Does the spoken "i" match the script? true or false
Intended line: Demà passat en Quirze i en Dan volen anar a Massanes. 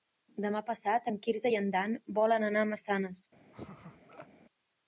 true